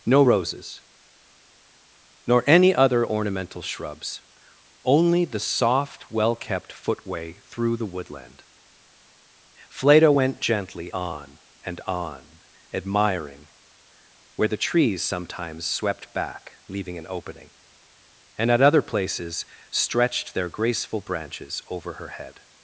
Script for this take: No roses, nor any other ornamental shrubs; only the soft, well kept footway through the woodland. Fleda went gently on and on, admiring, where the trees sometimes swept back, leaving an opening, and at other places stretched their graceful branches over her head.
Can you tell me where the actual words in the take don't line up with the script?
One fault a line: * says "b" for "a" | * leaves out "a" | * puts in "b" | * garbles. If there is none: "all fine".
all fine